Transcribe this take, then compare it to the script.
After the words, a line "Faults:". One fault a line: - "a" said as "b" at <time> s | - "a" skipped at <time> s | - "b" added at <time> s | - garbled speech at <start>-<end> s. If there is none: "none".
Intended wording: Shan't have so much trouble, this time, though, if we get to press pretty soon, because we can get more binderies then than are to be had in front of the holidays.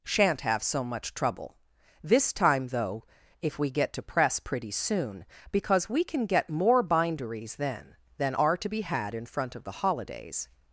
Shan't have so much trouble, this time, though, if we get to press pretty soon, because we can get more binderies then than are to be had in front of the holidays.
Faults:
none